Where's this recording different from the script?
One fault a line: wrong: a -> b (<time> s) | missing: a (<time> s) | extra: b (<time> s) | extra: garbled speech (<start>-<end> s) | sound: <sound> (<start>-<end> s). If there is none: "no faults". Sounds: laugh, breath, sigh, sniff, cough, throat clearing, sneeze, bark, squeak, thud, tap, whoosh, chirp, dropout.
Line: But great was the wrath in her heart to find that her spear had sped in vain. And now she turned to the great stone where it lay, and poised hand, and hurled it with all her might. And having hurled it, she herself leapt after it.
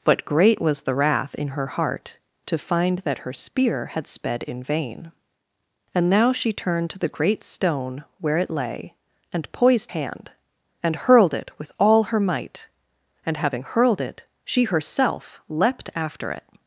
no faults